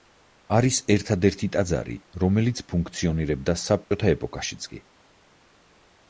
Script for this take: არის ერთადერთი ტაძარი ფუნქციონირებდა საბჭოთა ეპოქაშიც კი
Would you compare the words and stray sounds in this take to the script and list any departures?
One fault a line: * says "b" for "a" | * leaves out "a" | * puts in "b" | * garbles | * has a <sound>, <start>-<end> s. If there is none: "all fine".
* puts in "რომელიც"
* has a dropout, 3.8-3.9 s